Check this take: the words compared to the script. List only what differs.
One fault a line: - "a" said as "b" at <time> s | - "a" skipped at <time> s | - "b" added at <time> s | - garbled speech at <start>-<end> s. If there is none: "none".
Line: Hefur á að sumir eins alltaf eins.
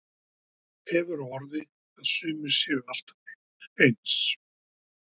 - "orði" added at 1.4 s
- "eins" said as "séu" at 2.6 s